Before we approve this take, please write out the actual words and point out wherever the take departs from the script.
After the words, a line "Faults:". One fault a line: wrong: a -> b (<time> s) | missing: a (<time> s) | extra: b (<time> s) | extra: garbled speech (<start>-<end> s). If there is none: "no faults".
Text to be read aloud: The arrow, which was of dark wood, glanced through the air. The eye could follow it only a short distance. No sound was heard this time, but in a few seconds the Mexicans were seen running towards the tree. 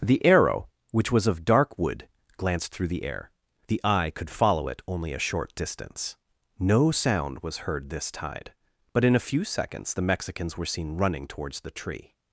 The arrow, which was of dark wood, glanced through the air. The eye could follow it only a short distance. No sound was heard this tide, but in a few seconds the Mexicans were seen running towards the tree.
Faults:
wrong: time -> tide (8.1 s)